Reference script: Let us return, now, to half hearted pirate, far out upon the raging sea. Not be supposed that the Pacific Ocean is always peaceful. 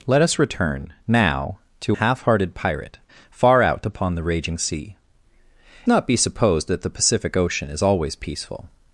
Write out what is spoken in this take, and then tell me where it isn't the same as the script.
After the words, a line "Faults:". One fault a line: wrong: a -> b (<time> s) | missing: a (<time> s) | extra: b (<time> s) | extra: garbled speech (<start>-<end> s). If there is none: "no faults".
Let us return, now, to half hearted pirate, far out upon the raging sea. Not be supposed that the Pacific Ocean is always peaceful.
Faults:
no faults